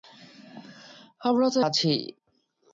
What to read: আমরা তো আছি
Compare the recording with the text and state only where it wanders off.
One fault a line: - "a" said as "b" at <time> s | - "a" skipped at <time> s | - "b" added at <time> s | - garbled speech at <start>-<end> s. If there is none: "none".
none